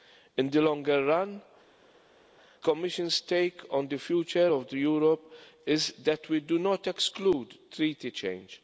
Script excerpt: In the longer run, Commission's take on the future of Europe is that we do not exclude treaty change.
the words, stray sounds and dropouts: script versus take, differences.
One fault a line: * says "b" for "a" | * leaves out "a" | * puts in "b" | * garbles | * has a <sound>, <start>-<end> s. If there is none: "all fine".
all fine